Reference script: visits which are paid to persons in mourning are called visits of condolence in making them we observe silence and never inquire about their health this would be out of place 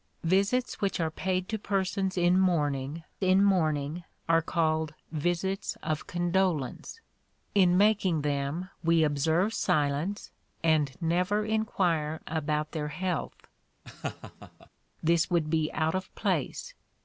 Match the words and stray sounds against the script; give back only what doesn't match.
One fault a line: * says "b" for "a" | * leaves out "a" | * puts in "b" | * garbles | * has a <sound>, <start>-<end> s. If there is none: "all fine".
* puts in "in mourning"
* has a laugh, 13.8-14.7 s